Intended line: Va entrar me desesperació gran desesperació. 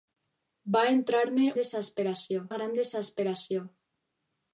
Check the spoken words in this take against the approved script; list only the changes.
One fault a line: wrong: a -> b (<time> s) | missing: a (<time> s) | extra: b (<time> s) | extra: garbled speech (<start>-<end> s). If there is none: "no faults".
no faults